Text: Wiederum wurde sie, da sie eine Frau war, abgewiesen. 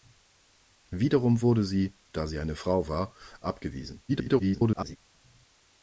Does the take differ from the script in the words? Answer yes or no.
yes